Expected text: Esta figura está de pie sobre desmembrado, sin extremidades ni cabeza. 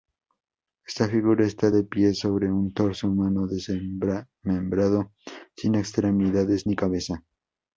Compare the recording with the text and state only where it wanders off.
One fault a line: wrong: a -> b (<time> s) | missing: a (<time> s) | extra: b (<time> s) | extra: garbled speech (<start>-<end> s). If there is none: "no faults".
extra: un torso humano (2.5 s)